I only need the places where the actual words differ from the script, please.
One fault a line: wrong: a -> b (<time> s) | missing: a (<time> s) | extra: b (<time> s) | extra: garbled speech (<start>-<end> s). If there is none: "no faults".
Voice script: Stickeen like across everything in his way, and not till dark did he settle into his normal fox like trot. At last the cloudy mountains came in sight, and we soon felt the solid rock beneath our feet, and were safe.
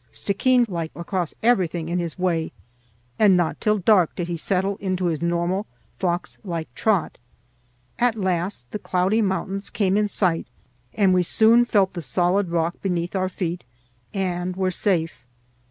no faults